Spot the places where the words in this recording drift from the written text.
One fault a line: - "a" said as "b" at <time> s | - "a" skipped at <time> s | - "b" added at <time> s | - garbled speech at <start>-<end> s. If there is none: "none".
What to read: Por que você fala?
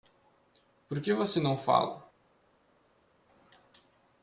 - "não" added at 1.4 s